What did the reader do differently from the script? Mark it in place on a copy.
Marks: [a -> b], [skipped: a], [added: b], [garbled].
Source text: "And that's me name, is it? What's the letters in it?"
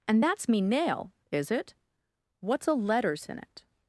"And that's me [name, -> nail] is it? What's [the -> a] letters in it?"